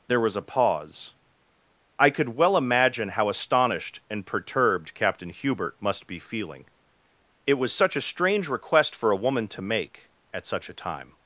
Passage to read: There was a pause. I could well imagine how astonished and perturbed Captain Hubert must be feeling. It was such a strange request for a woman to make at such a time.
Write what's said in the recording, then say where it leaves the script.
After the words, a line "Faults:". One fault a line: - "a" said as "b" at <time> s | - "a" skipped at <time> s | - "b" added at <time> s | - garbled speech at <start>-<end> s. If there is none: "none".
There was a pause. I could well imagine how astonished and perturbed Captain Hubert must be feeling. It was such a strange request for a woman to make at such a time.
Faults:
none